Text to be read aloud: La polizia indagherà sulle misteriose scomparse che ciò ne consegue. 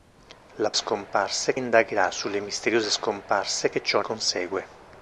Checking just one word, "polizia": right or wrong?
wrong